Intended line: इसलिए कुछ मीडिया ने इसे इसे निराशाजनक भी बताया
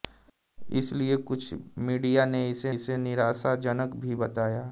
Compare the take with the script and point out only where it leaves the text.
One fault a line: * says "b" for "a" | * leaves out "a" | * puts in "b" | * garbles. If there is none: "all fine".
all fine